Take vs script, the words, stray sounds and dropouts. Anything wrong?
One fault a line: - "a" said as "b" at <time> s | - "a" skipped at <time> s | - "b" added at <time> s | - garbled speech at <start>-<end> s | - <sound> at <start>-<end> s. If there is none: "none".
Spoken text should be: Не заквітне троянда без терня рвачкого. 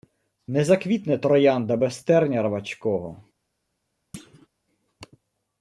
- thud at 4.1-4.5 s